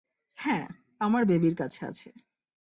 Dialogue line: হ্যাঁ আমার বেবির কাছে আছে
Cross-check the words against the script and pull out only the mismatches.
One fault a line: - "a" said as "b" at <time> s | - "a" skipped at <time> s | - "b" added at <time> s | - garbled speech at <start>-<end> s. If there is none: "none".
none